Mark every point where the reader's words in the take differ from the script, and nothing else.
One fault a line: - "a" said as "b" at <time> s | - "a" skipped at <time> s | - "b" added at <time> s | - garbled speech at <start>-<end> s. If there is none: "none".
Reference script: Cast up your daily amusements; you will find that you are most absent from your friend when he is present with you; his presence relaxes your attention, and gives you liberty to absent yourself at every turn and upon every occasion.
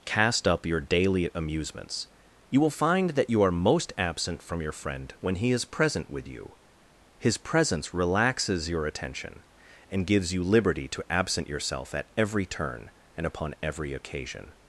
none